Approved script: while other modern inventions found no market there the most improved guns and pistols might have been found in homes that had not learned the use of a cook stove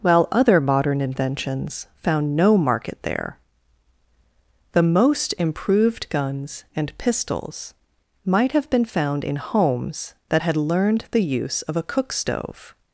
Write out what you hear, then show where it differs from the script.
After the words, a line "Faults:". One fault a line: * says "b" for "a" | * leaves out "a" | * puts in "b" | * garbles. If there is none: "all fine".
while other modern inventions found no market there the most improved guns and pistols might have been found in homes that had learned the use of a cook stove
Faults:
* leaves out "not"